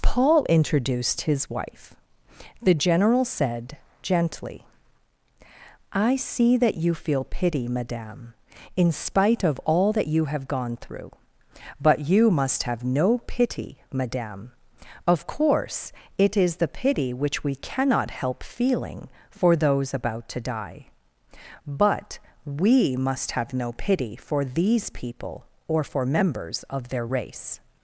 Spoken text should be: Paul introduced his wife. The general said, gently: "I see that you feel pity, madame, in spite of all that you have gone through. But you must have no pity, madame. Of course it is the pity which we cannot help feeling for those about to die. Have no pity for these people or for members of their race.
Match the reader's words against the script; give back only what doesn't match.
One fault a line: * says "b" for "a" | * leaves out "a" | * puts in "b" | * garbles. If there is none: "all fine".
* puts in "But we must"